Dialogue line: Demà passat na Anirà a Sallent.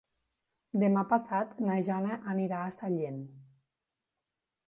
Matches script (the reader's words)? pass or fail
fail